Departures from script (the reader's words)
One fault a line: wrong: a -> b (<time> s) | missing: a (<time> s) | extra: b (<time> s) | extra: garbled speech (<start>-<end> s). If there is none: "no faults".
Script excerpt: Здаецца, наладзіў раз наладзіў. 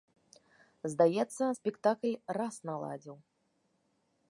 wrong: наладзіў -> спектакль (1.6 s)